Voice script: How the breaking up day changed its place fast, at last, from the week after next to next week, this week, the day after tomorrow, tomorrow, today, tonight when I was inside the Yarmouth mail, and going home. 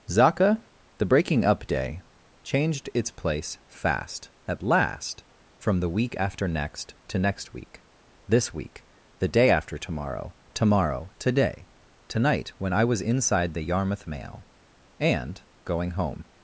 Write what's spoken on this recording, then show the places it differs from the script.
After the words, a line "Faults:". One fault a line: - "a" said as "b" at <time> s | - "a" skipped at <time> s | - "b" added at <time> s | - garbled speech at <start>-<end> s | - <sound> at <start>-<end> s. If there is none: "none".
Zaka the breaking up day changed its place fast, at last, from the week after next to next week, this week, the day after tomorrow, tomorrow, today, tonight when I was inside the Yarmouth mail, and going home.
Faults:
- "How" said as "Zaka" at 0.1 s